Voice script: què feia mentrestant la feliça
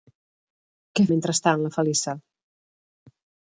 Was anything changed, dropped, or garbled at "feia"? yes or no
yes